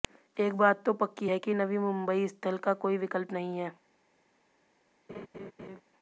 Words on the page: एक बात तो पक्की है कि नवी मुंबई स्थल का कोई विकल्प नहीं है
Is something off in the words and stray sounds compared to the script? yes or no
yes